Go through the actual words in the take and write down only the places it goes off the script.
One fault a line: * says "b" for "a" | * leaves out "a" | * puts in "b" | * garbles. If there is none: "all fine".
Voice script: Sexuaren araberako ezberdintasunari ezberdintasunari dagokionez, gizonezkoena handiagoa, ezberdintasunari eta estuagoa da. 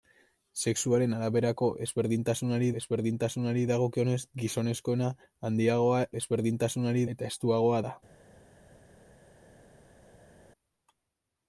all fine